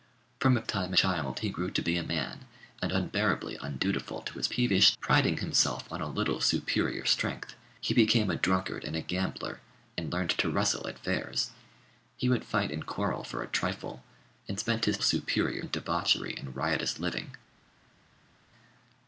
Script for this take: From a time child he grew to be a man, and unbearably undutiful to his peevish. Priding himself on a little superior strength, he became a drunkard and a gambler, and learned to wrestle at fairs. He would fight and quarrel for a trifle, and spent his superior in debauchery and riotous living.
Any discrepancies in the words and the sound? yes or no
no